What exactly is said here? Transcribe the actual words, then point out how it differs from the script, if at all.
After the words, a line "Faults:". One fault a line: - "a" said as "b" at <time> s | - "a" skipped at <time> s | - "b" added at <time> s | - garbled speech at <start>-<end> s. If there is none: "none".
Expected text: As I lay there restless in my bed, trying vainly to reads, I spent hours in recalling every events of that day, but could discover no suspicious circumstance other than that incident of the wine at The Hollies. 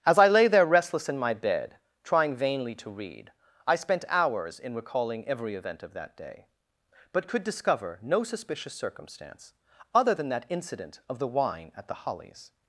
As I lay there restless in my bed, trying vainly to read, I spent hours in recalling every event of that day, but could discover no suspicious circumstance other than that incident of the wine at The Hollies.
Faults:
- "reads" said as "read" at 2.9 s
- "events" said as "event" at 5.5 s